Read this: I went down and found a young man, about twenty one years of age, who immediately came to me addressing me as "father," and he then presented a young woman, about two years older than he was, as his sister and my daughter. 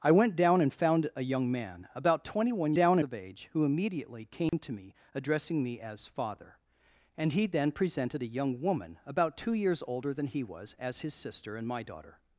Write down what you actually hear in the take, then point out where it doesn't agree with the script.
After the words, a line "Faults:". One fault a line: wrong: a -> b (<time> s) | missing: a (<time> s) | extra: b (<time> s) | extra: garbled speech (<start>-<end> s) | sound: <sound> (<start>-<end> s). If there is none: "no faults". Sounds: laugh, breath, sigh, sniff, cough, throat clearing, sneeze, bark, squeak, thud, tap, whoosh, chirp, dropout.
I went down and found a young man, about twenty one down of age, who immediately came to me addressing me as "father," and he then presented a young woman, about two years older than he was, as his sister and my daughter.
Faults:
wrong: years -> down (2.7 s)
sound: dropout (4.5-4.5 s)